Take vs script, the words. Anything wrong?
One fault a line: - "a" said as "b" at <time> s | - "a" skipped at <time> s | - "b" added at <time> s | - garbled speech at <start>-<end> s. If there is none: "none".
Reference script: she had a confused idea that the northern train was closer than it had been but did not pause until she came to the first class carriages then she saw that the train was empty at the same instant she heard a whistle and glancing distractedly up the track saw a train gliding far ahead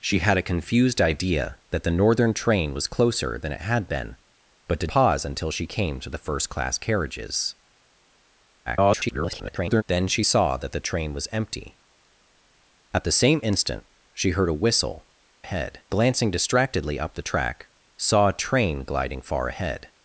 - "not" skipped at 4.9 s
- garbled speech at 8.7-9.8 s
- "and" said as "ahead" at 15.4 s